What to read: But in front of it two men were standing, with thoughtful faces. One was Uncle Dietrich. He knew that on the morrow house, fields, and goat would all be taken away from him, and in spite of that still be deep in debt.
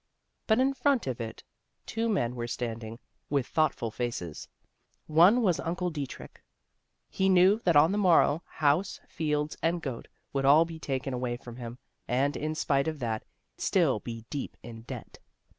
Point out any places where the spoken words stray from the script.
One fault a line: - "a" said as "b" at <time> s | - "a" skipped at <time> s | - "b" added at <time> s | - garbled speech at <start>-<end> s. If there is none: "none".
none